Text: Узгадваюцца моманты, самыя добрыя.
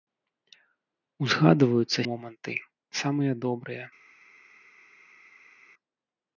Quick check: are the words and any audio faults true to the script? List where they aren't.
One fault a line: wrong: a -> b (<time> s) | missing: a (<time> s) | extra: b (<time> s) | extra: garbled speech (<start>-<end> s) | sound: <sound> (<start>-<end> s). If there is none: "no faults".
no faults